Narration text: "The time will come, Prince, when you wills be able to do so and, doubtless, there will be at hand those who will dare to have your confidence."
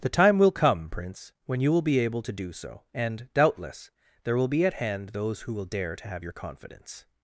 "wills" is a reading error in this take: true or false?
true